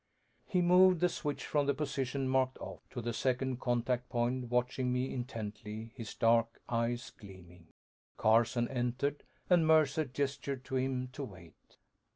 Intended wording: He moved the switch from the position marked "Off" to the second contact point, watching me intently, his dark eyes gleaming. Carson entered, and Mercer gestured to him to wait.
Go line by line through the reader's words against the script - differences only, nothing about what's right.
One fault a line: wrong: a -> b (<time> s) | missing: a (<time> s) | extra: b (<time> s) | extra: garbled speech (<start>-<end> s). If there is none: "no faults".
no faults